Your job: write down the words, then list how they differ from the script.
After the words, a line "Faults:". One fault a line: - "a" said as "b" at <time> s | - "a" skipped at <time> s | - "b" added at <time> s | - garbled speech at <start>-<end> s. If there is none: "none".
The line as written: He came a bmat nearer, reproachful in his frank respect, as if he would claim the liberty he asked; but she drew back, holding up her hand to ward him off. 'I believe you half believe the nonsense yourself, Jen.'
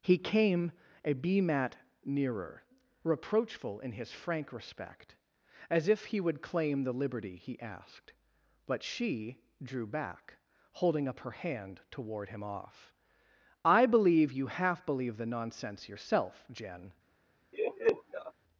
He came a bmat nearer, reproachful in his frank respect, as if he would claim the liberty he asked; but she drew back, holding up her hand to ward him off. 'I believe you half believe the nonsense yourself, Jen.'
Faults:
none